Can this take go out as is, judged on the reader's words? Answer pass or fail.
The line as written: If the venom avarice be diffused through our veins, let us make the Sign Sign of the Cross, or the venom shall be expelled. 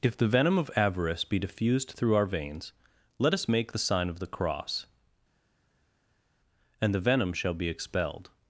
fail